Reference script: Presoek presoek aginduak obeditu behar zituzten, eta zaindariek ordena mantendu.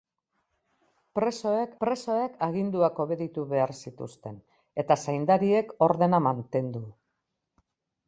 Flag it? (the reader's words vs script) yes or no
no